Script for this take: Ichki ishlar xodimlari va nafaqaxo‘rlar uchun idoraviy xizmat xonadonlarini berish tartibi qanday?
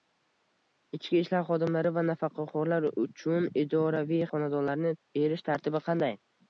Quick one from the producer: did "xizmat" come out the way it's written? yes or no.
no